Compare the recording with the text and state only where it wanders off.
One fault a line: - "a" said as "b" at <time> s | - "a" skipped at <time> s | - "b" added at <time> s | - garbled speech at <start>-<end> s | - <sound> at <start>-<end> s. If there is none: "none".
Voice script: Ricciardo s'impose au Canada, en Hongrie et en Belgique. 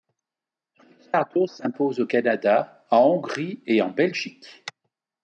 none